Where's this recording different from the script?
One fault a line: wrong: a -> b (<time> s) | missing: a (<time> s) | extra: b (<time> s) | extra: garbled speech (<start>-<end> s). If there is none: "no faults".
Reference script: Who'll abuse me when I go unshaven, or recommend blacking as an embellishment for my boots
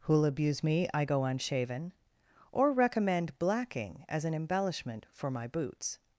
missing: when (0.9 s)